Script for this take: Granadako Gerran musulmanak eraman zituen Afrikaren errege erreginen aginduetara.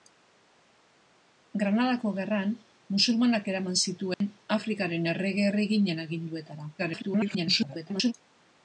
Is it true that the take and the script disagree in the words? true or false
true